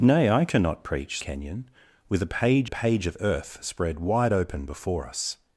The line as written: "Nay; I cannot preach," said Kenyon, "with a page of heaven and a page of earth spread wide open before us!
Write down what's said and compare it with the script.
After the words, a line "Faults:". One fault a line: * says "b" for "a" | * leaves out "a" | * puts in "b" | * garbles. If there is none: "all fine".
"Nay; I cannot preach," Kenyon, "with a page a page of earth spread wide open before us!
Faults:
* leaves out "said"
* leaves out "of heaven and"